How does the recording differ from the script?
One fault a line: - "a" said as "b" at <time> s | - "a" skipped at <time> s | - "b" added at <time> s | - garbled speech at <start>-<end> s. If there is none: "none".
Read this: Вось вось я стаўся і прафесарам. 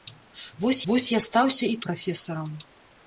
none